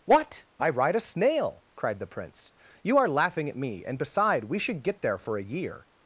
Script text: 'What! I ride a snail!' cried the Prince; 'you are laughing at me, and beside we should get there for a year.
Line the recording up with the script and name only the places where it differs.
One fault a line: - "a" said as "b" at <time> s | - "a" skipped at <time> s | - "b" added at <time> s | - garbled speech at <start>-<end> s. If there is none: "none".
none